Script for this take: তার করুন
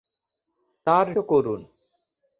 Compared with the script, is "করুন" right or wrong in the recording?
right